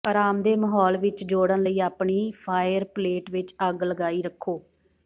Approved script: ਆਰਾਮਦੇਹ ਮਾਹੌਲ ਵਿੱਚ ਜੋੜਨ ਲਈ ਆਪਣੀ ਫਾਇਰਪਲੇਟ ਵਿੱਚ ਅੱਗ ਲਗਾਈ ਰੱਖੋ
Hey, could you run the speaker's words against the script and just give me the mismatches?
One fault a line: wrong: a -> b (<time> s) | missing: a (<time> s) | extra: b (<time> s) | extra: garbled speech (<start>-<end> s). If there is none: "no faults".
no faults